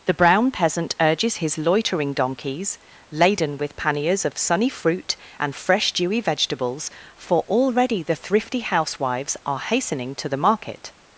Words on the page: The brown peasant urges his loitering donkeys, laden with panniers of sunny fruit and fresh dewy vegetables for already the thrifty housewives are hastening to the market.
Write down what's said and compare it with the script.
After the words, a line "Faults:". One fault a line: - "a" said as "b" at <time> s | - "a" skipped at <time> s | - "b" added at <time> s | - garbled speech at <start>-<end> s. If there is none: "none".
The brown peasant urges his loitering donkeys, laden with panniers of sunny fruit and fresh dewy vegetables for already the thrifty housewives are hastening to the market.
Faults:
none